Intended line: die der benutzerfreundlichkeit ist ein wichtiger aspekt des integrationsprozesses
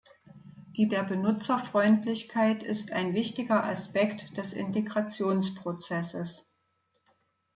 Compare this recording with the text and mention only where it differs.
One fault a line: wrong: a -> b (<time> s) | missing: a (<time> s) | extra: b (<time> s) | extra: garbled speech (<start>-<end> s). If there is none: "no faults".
no faults